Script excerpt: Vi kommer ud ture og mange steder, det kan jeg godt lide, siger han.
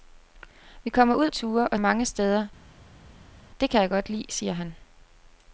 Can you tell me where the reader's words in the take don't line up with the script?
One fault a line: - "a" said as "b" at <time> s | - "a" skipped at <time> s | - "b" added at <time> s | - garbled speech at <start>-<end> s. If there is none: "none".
none